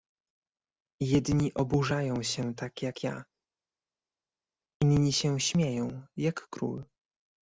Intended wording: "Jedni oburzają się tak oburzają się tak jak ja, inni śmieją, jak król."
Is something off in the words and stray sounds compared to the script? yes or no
yes